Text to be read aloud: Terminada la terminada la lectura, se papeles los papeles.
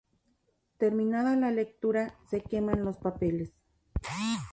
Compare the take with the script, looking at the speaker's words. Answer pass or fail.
fail